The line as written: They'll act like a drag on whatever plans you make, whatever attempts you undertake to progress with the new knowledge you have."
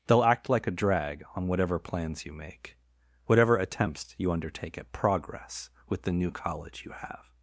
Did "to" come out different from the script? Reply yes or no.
yes